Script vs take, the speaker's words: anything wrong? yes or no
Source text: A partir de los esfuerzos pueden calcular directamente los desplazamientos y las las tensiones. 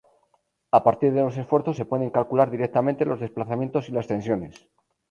yes